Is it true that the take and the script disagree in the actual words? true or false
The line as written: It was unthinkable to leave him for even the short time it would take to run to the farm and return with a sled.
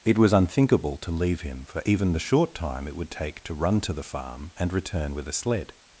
false